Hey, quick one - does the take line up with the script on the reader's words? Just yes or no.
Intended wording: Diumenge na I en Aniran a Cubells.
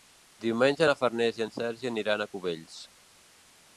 no